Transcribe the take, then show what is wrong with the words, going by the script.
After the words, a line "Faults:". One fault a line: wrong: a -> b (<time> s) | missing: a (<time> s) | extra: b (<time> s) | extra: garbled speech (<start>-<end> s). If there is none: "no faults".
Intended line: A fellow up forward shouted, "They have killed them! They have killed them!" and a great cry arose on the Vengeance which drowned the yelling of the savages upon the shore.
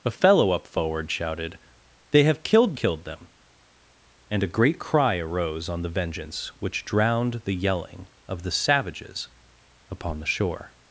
A fellow up forward shouted, "They have killed killed them!" and a great cry arose on the Vengeance which drowned the yelling of the savages upon the shore.
Faults:
missing: them They have (2.8 s)